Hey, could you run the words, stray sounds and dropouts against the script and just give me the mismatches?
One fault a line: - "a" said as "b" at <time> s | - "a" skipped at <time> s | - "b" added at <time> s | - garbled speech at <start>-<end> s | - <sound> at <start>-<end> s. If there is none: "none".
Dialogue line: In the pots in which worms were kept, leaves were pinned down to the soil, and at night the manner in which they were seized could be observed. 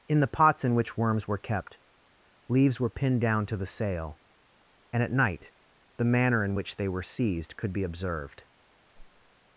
- "soil" said as "sail" at 3.6 s
- whoosh at 8.9-9.3 s